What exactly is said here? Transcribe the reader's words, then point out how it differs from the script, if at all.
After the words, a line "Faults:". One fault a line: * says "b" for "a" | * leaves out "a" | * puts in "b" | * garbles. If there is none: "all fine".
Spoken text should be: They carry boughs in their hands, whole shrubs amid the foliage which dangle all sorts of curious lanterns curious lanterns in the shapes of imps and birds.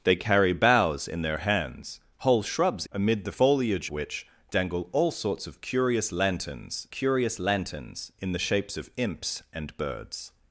They carry boughs in their hands, whole shrubs amid the foliage which dangle all sorts of curious lanterns curious lanterns in the shapes of imps and birds.
Faults:
all fine